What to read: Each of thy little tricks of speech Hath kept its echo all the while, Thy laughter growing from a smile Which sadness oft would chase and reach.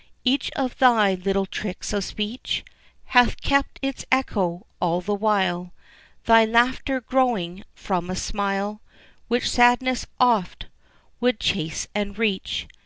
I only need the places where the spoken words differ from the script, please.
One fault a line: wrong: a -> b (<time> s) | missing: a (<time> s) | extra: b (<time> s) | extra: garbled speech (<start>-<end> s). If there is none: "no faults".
no faults